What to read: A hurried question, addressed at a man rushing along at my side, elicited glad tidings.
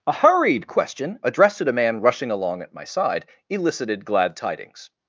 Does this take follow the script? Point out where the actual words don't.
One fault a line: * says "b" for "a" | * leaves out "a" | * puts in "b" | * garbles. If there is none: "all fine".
all fine